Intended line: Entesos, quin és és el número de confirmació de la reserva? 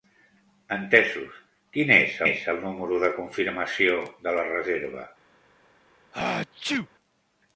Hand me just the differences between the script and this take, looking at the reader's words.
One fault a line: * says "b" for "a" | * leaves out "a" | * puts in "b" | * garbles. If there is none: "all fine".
all fine